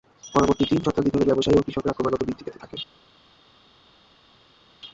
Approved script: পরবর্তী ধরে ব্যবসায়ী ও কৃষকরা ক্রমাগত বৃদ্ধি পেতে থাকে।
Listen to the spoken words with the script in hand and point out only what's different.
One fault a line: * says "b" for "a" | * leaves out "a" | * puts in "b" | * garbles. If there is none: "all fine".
* puts in "তিন শতাব্দী"